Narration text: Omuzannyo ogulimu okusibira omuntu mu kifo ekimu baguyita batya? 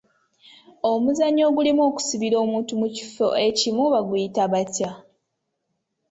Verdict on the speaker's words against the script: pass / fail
pass